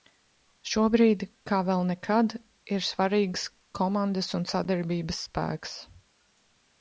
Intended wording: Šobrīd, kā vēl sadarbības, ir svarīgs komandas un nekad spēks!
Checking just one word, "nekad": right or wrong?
wrong